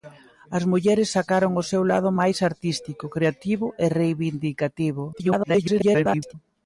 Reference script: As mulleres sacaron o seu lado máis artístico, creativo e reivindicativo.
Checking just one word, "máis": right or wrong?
right